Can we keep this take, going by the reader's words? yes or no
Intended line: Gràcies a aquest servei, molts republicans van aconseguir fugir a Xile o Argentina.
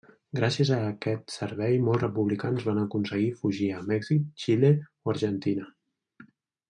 no